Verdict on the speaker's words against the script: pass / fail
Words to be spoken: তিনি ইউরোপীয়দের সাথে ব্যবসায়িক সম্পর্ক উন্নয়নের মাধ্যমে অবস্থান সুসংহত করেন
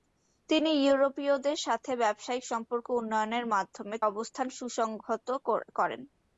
pass